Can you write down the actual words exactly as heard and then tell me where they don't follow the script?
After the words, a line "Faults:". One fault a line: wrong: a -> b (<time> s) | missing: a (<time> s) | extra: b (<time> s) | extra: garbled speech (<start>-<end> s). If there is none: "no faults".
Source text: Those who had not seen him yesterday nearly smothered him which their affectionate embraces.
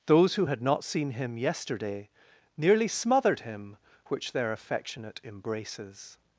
Those who had not seen him yesterday nearly smothered him which their affectionate embraces.
Faults:
no faults